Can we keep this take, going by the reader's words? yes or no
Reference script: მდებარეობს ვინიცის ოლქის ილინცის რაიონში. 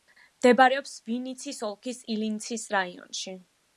yes